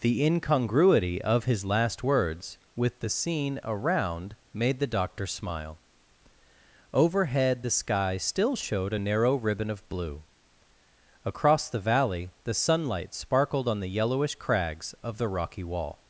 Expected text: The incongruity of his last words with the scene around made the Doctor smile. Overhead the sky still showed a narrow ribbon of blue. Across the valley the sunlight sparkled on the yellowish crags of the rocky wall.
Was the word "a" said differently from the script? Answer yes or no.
no